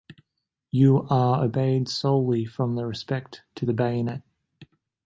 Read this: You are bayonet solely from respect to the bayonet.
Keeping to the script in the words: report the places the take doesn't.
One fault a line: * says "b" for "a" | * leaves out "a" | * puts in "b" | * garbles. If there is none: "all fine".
* says "obeyed" for "bayonet"